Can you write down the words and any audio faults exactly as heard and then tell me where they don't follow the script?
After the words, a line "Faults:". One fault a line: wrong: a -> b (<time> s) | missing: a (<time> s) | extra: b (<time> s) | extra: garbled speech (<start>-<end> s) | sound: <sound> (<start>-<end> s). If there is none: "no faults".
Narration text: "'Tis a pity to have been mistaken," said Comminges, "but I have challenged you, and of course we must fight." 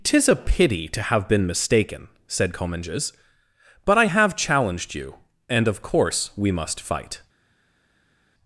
"'Tis a pity to have been mistaken," said Comminges, "but I have challenged you, and of course we must fight."
Faults:
no faults